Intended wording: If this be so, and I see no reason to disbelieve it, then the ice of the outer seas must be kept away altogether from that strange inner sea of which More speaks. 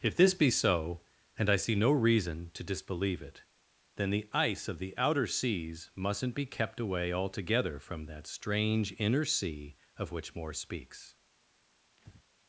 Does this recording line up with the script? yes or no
no